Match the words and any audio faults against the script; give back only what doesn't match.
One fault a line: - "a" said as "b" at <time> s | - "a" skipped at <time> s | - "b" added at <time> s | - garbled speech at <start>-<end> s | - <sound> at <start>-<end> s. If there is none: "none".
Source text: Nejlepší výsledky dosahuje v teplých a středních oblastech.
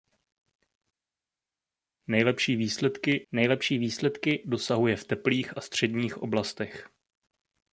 - "nejlepší výsledky" added at 3.3 s